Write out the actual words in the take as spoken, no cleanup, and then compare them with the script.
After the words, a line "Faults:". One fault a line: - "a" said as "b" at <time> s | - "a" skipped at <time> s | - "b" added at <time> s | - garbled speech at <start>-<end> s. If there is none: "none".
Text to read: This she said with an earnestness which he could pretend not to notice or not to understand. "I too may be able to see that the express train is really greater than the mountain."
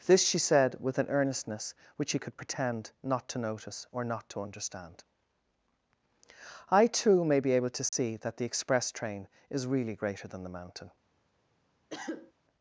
This she said with an earnestness which he could pretend not to notice or not to understand. "I too may be able to see that the express train is really greater than the mountain."
Faults:
none